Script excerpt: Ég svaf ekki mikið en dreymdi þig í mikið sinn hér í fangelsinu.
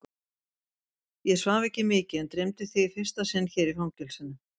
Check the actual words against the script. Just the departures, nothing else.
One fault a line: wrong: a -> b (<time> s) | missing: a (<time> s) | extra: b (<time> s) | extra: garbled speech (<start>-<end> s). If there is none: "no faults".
wrong: mikið -> fyrsta (3.0 s)